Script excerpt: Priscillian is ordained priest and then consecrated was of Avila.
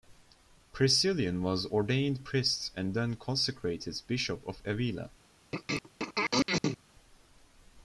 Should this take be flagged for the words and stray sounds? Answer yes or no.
yes